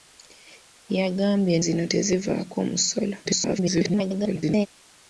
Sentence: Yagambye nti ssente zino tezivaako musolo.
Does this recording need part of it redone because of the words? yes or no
yes